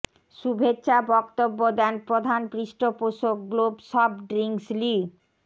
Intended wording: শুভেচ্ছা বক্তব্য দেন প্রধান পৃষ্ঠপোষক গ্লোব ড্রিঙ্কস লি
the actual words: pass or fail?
fail